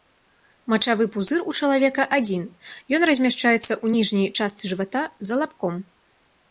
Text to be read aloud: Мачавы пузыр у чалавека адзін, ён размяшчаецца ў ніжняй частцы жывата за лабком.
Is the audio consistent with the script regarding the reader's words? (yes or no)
yes